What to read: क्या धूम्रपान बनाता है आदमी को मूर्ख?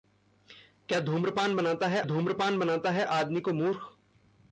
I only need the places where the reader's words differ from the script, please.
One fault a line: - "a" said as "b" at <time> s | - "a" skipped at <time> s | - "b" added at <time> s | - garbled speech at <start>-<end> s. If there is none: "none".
- "धूम्रपान बनाता है" added at 2.0 s